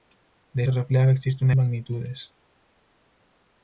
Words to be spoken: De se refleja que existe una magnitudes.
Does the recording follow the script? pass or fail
pass